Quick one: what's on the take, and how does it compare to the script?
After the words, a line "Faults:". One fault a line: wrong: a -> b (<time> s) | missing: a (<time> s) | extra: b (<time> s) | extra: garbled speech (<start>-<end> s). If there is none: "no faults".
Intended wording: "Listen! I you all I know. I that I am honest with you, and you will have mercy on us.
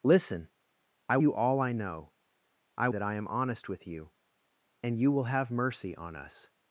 "Listen! I you all I know. I that I am honest with you, and you will have mercy on us.
Faults:
no faults